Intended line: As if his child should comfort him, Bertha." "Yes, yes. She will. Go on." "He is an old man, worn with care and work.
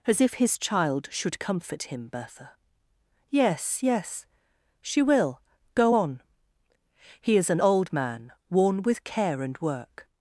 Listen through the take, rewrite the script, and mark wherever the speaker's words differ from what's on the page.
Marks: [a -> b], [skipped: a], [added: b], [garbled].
As if his child should comfort him, Bertha." "Yes, yes. She will. Go on." "He is an old man, worn with care and work.